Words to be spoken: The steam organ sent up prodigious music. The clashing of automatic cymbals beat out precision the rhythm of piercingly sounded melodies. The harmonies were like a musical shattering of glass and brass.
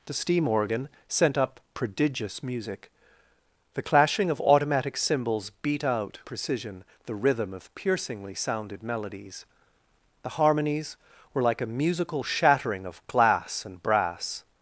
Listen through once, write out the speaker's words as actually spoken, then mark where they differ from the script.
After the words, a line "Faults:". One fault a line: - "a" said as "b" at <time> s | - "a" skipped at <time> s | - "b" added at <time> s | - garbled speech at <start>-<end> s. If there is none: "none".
The steam organ sent up prodigious music. The clashing of automatic cymbals beat out precision the rhythm of piercingly sounded melodies. The harmonies were like a musical shattering of glass and brass.
Faults:
none